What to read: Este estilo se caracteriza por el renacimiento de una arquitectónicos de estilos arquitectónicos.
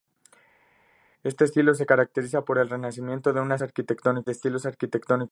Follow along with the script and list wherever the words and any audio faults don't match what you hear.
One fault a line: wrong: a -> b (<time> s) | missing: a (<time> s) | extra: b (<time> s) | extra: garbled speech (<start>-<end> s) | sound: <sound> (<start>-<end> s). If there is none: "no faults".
no faults